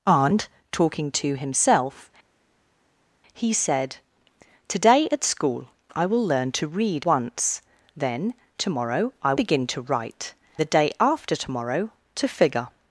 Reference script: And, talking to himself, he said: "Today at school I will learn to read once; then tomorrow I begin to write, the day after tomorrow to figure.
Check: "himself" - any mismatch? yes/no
no